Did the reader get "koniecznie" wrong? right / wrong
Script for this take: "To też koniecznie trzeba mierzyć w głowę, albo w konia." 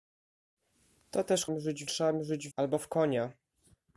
wrong